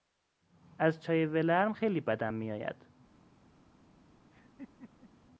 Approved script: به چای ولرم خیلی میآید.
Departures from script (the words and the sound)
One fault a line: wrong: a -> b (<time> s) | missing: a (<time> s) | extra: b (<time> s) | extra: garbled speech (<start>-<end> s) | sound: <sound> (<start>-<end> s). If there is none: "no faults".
wrong: به -> از (0.8 s)
extra: بدم (2.0 s)
sound: laugh (4.3-5.1 s)